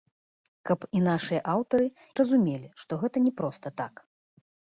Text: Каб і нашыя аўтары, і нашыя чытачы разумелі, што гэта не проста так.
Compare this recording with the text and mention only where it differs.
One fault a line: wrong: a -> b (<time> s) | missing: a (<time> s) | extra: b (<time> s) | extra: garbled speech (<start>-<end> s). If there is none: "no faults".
missing: і нашыя чытачы (1.9 s)